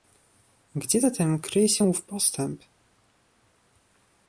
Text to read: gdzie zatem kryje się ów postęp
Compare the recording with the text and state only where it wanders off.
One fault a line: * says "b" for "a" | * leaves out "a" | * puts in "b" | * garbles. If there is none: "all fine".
all fine